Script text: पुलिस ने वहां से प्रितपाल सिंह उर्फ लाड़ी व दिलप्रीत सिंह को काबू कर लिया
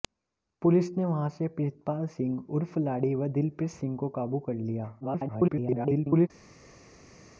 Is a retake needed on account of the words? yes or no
yes